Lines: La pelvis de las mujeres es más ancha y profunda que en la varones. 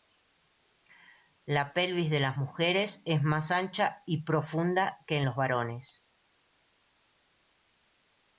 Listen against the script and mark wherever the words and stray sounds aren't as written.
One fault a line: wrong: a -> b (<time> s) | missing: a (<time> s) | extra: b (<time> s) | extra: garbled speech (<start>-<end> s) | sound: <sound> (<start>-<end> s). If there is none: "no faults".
wrong: la -> los (5.2 s)